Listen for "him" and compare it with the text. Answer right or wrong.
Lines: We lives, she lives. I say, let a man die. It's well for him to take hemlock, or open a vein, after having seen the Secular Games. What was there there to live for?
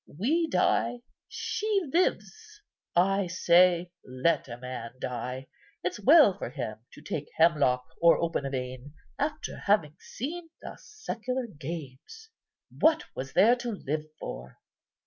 right